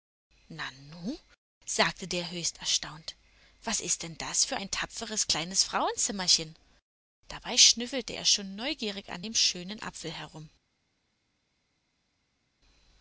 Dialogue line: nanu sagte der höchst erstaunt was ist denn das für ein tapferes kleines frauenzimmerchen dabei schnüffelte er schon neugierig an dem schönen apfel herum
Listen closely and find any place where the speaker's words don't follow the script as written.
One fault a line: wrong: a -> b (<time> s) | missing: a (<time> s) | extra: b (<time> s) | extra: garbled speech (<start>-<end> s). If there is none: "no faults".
no faults